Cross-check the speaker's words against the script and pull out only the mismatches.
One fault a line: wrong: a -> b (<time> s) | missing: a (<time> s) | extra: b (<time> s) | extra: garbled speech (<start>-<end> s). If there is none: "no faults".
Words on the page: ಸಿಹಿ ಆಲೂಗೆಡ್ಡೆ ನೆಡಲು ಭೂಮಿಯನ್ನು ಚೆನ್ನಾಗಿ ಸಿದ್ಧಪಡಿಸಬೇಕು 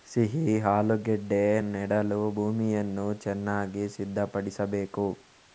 no faults